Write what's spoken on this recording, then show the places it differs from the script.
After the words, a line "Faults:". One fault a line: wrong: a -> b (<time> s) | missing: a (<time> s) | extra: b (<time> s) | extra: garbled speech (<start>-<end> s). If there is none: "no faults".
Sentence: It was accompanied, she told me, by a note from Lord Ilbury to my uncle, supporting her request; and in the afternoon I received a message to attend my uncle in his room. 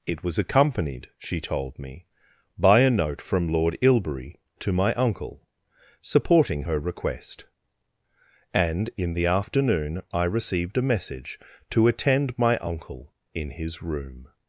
It was accompanied, she told me, by a note from Lord Ilbury to my uncle, supporting her request; and in the afternoon I received a message to attend my uncle in his room.
Faults:
no faults